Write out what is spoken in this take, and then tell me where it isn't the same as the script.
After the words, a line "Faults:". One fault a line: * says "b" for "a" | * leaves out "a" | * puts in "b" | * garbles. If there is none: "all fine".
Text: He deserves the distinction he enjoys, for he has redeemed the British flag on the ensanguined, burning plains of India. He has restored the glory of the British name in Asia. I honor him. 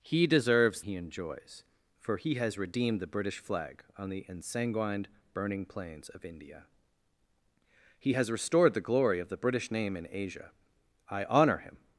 He deserves he enjoys, for he has redeemed the British flag on the ensanguined, burning plains of India. He has restored the glory of the British name in Asia. I honor him.
Faults:
* leaves out "the distinction"